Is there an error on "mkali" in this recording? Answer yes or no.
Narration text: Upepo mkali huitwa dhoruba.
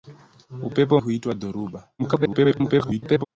yes